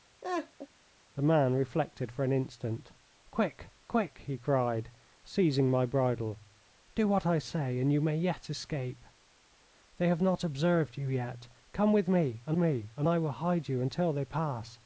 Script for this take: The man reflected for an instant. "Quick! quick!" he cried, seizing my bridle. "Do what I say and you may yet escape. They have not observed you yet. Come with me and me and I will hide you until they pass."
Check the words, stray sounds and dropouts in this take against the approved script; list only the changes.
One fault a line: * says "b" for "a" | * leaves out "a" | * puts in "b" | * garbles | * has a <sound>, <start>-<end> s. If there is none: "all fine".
* has a laugh, 0.2-0.7 s